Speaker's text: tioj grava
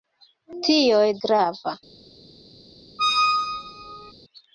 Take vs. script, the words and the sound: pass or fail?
fail